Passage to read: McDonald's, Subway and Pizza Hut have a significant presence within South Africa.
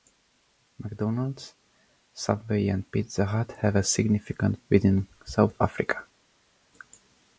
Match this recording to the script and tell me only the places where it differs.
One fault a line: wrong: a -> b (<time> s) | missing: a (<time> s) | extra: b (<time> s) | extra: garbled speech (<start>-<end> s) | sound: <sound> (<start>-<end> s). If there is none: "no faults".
missing: presence (4.6 s)